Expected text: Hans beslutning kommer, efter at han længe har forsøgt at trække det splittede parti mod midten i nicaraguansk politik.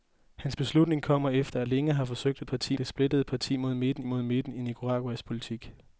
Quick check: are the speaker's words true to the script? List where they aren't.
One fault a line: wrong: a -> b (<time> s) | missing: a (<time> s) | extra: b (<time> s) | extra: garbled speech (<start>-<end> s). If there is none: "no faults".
missing: han (1.7 s)
wrong: trække -> parti (2.4 s)
extra: mod midten (4.0 s)